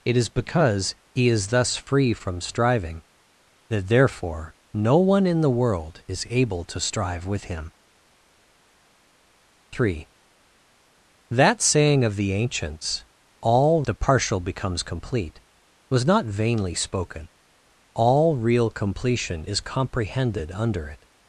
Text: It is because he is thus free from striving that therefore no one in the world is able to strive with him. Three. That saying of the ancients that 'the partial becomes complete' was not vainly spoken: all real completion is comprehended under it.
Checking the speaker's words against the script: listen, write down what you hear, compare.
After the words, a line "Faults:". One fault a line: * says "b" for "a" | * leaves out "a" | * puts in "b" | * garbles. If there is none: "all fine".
It is because he is thus free from striving that therefore no one in the world is able to strive with him. Three. That saying of the ancients all 'the partial becomes complete' was not vainly spoken: all real completion is comprehended under it.
Faults:
* says "all" for "that"